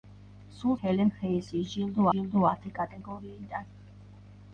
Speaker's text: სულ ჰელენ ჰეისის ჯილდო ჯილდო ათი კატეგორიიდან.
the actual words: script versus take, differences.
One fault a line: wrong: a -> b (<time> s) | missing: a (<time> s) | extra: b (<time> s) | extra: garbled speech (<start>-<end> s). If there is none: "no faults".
no faults